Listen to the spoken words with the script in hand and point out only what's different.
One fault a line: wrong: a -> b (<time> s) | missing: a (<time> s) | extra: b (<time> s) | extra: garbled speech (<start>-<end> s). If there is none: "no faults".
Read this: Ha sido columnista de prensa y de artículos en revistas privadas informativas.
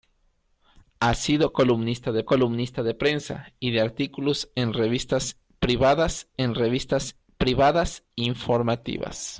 extra: columnista de (2.3 s)
extra: en revistas privadas (6.4 s)